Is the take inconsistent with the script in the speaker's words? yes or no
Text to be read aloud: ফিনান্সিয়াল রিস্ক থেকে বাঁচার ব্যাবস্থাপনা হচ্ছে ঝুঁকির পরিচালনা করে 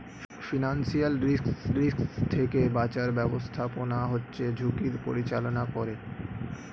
yes